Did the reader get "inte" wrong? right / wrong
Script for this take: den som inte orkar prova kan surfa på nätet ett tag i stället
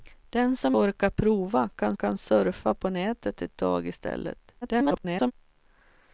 wrong